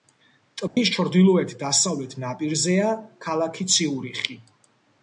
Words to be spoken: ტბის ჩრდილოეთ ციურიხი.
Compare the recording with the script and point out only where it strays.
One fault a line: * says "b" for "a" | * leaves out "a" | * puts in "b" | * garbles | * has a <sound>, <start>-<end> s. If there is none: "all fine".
* has a dropout, 0.7-0.8 s
* puts in "დასავლეთ ნაპირზეა ქალაქი"